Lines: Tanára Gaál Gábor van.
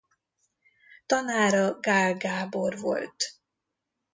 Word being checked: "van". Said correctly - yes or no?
no